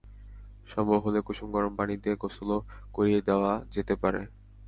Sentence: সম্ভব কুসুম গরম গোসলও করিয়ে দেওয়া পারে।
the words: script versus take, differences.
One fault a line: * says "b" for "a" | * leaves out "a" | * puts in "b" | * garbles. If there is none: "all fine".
* puts in "হলে"
* puts in "পানি দিয়ে"
* puts in "যেতে"